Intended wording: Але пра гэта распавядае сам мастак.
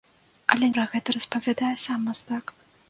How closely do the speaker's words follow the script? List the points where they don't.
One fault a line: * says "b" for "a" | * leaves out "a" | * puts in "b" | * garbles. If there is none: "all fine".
all fine